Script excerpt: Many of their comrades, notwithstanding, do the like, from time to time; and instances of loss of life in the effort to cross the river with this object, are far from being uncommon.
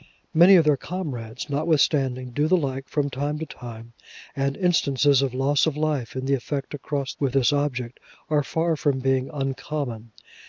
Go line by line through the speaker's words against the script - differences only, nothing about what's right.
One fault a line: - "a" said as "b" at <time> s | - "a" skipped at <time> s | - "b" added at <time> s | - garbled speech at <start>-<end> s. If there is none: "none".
- "the river" skipped at 7.1 s